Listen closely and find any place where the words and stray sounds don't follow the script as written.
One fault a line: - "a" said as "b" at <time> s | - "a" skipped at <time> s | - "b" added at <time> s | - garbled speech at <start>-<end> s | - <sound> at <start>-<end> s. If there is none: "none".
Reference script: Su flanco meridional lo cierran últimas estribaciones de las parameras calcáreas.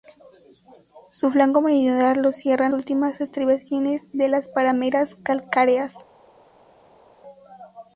none